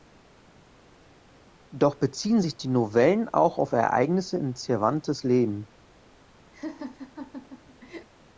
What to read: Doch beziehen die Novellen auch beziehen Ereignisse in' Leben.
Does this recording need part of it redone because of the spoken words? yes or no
yes